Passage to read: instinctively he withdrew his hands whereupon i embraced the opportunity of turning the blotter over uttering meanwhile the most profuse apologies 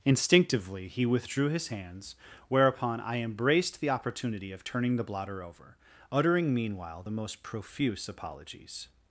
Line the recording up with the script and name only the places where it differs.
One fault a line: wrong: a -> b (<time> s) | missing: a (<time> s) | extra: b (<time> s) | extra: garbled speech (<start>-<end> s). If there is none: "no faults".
no faults